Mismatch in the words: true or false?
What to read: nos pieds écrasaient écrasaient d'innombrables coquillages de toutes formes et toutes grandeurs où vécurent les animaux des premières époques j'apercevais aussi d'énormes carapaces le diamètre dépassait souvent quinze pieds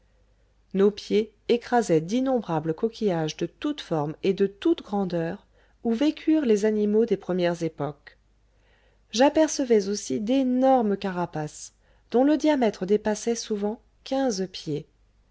true